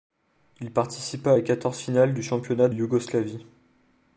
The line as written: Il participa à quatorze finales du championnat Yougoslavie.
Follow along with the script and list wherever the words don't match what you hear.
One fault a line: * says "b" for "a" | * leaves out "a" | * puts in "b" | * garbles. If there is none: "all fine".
all fine